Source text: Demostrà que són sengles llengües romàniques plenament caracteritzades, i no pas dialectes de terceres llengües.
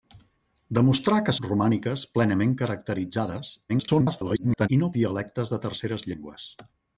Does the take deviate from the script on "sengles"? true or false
true